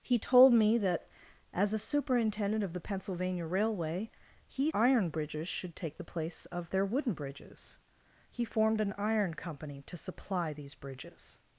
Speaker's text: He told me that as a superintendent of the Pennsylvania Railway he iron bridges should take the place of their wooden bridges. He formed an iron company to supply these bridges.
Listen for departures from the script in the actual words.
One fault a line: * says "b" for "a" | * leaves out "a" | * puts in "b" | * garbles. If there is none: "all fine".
all fine